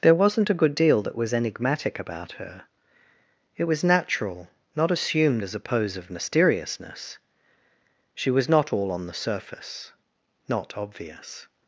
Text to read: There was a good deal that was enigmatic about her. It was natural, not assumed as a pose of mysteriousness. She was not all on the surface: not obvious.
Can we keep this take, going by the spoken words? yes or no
no